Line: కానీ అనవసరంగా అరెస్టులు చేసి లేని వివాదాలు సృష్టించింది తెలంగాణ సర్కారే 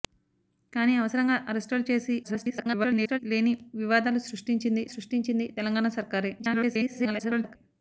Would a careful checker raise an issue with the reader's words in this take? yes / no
yes